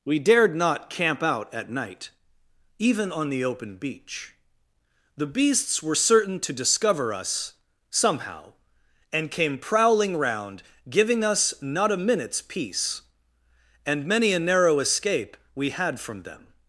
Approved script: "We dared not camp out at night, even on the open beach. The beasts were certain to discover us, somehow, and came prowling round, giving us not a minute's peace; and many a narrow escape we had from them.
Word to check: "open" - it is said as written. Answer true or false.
true